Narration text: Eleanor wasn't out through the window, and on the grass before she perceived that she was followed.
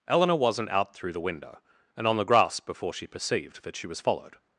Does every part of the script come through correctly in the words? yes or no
yes